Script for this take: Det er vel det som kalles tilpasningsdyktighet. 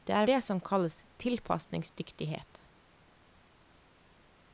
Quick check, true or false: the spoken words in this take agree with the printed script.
false